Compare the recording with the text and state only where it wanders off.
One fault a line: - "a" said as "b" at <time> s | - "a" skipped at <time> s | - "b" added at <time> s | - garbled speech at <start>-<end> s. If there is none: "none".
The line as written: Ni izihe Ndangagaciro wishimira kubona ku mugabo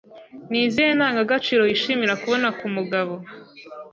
none